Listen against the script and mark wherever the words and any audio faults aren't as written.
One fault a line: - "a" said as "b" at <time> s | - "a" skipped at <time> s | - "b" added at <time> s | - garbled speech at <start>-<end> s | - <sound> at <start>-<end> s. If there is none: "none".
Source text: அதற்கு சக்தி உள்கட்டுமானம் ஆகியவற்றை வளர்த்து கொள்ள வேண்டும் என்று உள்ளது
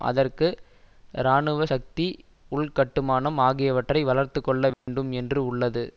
- "இராணுவ" added at 1.2 s
- dropout at 4.7-4.9 s